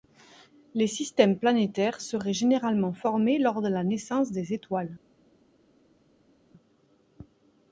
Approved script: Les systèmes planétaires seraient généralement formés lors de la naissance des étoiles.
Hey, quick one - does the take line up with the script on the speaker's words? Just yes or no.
yes